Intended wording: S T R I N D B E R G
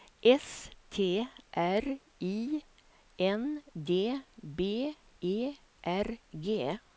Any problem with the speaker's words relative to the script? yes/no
no